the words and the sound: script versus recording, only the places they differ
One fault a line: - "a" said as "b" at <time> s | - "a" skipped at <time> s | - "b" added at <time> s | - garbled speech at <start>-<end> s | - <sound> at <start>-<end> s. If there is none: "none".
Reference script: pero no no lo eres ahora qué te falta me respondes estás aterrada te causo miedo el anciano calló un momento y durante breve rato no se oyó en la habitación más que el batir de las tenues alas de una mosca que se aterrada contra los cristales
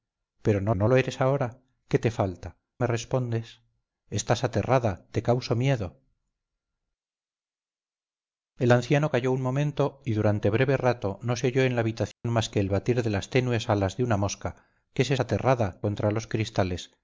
- dropout at 12.1-12.2 s